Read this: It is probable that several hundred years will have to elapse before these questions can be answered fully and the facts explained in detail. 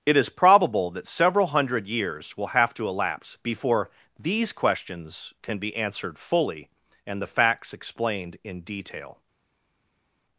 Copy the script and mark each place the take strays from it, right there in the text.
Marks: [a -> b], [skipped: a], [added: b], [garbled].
It is probable that several hundred years will have to elapse before these questions can be answered fully and the facts explained in detail.